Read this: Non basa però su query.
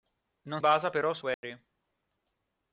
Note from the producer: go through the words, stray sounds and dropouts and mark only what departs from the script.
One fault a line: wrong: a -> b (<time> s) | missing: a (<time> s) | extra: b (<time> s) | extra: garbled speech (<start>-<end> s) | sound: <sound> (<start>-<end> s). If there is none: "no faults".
sound: dropout (1.3-1.4 s)